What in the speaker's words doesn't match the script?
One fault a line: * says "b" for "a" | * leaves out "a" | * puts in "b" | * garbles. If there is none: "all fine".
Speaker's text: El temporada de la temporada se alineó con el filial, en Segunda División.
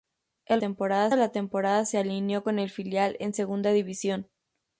all fine